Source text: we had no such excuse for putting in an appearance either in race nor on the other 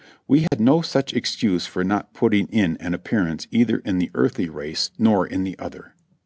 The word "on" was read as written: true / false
false